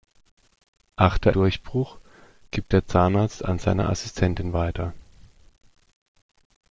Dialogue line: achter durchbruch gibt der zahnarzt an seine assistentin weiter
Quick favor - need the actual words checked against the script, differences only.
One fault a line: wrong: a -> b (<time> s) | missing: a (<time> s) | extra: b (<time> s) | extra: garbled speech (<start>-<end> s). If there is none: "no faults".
no faults